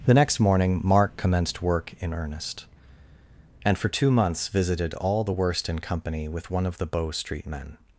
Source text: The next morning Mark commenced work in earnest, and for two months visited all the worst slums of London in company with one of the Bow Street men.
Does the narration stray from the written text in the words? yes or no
yes